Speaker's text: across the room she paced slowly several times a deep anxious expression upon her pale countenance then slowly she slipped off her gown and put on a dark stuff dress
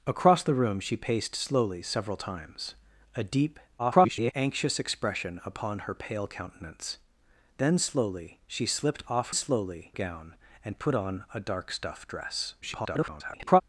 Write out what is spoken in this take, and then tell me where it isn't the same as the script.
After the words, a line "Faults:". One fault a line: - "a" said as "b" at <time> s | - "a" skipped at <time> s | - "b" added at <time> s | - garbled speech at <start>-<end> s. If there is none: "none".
across the room she paced slowly several times a deep [garbled] anxious expression upon her pale countenance then slowly she slipped off slowly gown and put on a dark stuff dress [garbled]
Faults:
- garbled speech at 3.8-4.3 s
- "her" said as "slowly" at 9.3 s
- garbled speech at 12.6-13.6 s